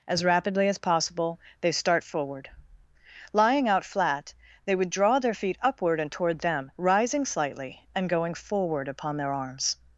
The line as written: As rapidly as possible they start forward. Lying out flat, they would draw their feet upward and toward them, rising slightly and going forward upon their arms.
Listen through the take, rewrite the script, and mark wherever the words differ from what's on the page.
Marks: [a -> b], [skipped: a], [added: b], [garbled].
As rapidly as possible they start forward. Lying out flat, they would draw their feet upward and toward them, rising slightly and going forward upon their arms.